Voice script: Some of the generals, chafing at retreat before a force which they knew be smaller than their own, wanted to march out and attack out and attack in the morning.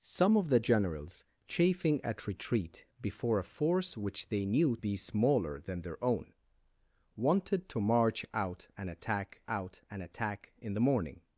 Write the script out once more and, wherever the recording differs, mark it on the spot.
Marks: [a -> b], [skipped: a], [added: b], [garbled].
Some of the generals, chafing at retreat before a force which they knew be smaller than their own, wanted to march out and attack out and attack in the morning.